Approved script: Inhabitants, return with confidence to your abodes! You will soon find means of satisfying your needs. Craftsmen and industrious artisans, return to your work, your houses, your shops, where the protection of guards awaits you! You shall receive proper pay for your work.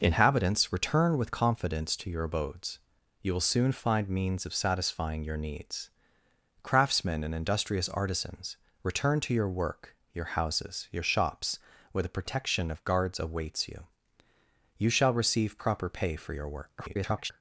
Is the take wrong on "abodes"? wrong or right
right